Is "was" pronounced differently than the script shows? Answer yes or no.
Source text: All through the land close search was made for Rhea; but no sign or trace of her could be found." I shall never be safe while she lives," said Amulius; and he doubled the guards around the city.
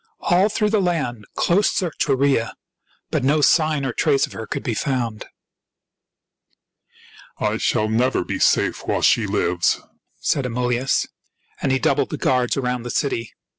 yes